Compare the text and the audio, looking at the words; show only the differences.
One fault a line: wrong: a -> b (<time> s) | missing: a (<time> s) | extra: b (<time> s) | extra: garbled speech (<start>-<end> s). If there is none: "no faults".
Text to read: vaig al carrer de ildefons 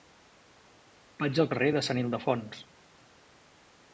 extra: sant (1.9 s)